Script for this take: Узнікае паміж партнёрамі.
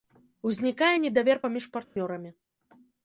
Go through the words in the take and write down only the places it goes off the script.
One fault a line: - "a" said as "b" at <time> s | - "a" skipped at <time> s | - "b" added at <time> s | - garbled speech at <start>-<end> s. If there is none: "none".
- "недавер" added at 1.0 s